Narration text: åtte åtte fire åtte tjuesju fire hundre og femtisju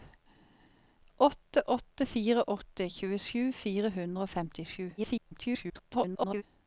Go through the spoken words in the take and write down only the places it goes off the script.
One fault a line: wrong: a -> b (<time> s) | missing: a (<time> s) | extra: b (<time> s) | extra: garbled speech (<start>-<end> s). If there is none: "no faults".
extra: garbled speech (5.0-6.4 s)